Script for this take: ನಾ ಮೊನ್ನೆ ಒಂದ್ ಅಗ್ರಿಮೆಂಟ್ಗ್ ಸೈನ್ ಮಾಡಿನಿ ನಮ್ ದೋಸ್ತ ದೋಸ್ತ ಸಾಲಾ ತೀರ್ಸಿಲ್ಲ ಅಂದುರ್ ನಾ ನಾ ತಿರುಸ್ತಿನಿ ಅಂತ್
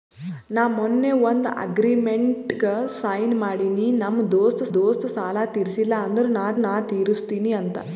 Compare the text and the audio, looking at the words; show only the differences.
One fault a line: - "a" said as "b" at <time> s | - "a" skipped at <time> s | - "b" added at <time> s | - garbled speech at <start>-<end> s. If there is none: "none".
none